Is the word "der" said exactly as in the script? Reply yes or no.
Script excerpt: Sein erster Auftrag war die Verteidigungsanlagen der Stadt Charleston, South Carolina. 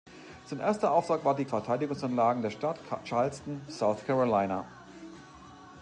yes